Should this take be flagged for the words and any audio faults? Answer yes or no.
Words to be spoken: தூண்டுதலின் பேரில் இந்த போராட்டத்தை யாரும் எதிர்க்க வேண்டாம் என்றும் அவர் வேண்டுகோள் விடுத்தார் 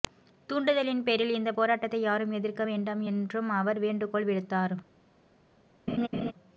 yes